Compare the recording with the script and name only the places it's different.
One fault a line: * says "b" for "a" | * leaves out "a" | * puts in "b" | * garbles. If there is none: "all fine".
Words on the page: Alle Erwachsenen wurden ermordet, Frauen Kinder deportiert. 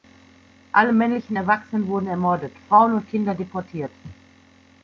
* puts in "männlichen"
* puts in "und"